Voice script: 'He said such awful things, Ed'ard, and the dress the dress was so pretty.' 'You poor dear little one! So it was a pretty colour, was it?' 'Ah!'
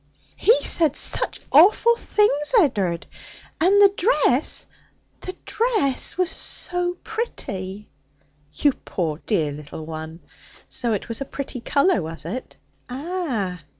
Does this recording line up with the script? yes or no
yes